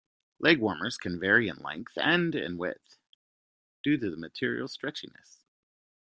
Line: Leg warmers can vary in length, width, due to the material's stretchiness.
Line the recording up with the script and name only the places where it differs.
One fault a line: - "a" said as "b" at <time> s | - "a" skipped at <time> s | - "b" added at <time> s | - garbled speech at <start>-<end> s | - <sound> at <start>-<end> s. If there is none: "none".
- "and in" added at 1.9 s